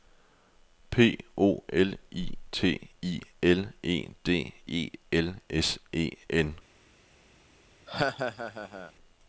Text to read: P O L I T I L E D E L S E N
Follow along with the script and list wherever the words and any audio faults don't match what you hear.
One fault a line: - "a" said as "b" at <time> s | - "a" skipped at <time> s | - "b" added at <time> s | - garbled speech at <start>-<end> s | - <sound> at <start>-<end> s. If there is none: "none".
- laugh at 7.9-8.9 s